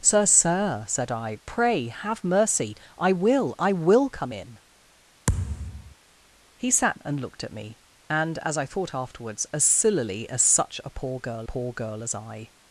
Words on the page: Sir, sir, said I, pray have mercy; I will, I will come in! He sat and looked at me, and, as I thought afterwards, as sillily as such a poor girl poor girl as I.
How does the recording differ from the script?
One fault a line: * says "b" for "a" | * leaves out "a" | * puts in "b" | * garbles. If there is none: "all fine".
all fine